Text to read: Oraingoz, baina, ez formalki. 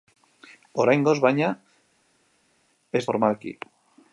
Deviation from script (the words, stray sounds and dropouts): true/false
false